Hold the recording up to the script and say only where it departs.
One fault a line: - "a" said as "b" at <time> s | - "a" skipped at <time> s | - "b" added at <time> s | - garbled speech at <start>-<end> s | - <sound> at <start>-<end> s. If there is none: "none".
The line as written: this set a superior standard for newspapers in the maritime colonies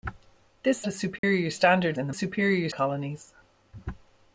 - "set" skipped at 0.8 s
- dropout at 1.2-1.2 s
- "for newspapers" skipped at 2.0 s
- "maritime" said as "superior" at 2.1 s